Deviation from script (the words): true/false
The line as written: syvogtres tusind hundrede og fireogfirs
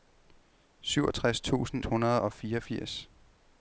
false